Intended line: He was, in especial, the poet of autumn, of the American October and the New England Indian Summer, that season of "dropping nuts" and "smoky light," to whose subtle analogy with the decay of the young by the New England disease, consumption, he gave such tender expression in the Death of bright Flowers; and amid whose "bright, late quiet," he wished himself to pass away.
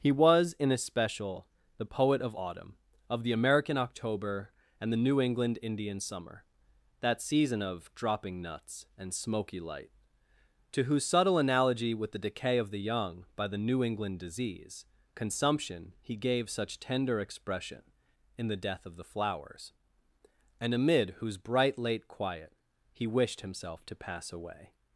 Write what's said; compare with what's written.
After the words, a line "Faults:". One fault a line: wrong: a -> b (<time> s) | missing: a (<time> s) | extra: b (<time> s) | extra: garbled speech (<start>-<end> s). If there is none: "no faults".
He was, in especial, the poet of autumn, of the American October and the New England Indian Summer, that season of "dropping nuts" and "smoky light," to whose subtle analogy with the decay of the young by the New England disease, consumption, he gave such tender expression in the Death of the Flowers; and amid whose "bright, late quiet," he wished himself to pass away.
Faults:
wrong: bright -> the (19.0 s)